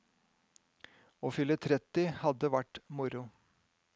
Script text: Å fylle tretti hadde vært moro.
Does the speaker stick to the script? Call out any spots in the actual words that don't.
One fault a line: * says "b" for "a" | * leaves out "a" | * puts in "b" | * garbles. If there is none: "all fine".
all fine